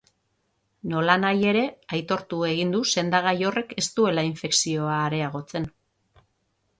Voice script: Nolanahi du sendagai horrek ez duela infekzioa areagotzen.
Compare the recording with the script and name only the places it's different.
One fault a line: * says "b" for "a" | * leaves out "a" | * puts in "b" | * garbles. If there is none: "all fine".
* puts in "ere aitortu egin"